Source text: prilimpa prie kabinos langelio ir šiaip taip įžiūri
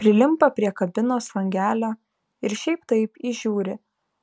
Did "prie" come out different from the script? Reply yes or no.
no